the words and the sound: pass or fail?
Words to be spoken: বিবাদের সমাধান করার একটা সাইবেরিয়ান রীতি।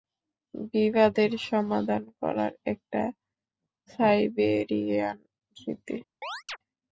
fail